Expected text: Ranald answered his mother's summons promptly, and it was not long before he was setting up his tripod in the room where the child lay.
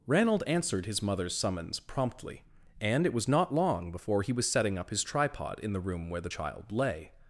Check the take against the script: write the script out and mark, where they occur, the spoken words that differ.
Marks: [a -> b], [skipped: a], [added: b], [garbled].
Ranald answered his mother's summons promptly, and it was not long before he was setting up his tripod in the room where the child lay.